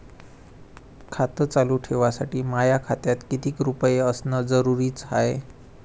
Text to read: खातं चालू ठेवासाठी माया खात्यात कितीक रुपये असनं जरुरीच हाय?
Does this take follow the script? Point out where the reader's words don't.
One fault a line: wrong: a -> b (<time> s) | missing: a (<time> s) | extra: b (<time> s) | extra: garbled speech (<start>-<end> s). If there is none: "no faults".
no faults